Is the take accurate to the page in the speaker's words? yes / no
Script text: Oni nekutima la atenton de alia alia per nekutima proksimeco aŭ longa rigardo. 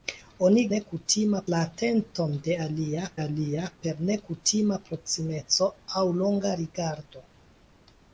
yes